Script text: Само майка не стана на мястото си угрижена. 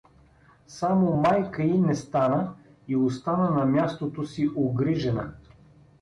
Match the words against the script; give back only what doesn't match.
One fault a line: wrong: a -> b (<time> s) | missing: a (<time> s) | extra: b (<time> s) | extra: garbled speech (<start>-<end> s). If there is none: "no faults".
extra: й (1.6 s)
extra: и остана (2.9 s)